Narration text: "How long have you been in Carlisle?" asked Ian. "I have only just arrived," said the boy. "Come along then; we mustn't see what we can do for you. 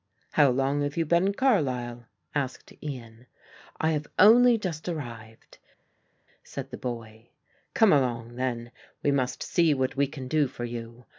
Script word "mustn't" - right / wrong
wrong